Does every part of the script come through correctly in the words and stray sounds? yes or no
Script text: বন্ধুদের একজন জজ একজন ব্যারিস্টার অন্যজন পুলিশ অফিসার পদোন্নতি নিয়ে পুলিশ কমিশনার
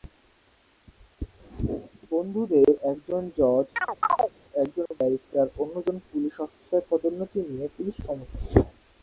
no